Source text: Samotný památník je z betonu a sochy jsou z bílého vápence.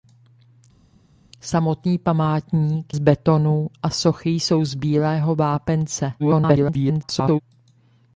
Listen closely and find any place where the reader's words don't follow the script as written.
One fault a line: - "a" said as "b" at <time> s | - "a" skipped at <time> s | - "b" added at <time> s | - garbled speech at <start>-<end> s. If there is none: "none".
- "je" skipped at 3.0 s
- garbled speech at 6.2-7.4 s